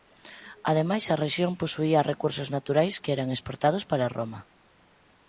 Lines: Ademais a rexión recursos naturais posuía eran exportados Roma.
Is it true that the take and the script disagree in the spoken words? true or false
true